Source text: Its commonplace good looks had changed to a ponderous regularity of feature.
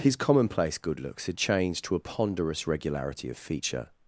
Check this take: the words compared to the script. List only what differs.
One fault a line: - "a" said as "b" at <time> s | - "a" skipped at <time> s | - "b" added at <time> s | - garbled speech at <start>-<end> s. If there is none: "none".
- "Its" said as "His" at 0.0 s